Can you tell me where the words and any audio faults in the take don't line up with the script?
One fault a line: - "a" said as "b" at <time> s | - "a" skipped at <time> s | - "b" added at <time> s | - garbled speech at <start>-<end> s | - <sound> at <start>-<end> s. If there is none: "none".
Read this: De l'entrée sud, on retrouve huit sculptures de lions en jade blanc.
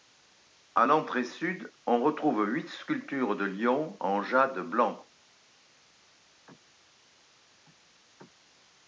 - "De" said as "À" at 0.7 s